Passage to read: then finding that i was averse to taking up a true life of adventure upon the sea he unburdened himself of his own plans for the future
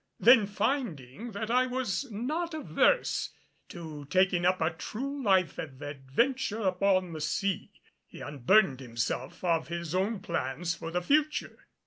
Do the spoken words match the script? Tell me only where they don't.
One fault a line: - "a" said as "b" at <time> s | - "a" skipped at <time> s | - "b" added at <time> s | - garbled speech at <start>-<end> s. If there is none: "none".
- "not" added at 2.1 s